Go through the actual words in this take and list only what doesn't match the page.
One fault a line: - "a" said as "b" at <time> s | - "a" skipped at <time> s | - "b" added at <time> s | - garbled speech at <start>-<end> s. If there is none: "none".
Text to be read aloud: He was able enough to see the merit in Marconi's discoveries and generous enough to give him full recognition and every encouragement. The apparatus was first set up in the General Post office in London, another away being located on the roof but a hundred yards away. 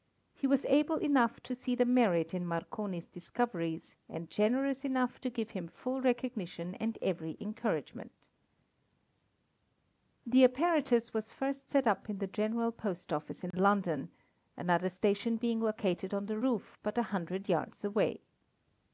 - "away" said as "station" at 14.9 s